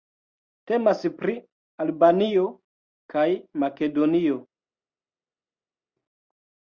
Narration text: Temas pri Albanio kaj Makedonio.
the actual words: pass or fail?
pass